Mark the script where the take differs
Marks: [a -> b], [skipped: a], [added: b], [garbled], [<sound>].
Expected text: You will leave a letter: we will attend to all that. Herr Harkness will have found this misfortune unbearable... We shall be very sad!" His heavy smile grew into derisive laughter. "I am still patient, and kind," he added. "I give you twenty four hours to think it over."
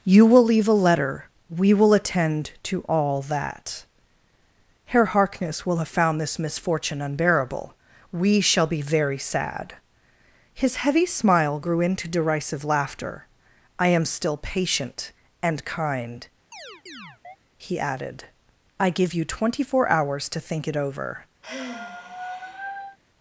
You will leave a letter: we will attend to all that. Herr Harkness will have found this misfortune unbearable... We shall be very sad!" His heavy smile grew into derisive laughter. "I am still patient, and kind," [chirp] he added. "I give you twenty four hours to think it over." [sigh]